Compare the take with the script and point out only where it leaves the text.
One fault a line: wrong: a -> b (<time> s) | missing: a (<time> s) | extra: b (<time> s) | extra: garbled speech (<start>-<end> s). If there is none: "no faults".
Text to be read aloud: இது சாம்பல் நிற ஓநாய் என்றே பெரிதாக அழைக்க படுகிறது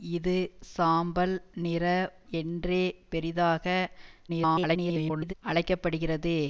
missing: ஓநாய் (1.9 s)
extra: garbled speech (4.3-5.3 s)